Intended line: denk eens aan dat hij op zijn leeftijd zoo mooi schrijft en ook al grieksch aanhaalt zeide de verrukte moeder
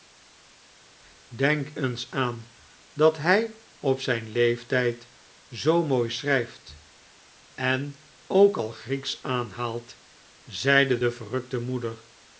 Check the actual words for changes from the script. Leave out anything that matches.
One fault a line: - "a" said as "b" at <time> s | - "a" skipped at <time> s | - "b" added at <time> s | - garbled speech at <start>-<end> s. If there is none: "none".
none